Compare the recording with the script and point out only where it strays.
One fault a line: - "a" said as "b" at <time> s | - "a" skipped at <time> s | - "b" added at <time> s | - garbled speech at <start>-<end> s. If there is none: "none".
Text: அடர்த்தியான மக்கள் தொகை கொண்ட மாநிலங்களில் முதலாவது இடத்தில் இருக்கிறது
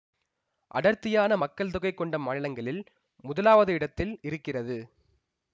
none